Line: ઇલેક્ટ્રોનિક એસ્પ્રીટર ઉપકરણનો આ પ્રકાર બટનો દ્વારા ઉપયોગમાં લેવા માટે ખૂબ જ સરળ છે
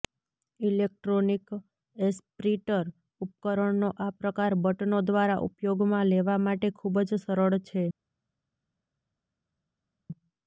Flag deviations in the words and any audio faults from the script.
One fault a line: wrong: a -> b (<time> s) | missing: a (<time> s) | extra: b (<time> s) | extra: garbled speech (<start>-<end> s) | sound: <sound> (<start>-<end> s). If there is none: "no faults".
no faults